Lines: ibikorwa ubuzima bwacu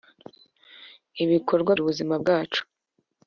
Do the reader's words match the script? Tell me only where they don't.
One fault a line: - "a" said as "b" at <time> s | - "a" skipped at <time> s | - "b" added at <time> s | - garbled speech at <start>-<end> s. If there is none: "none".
none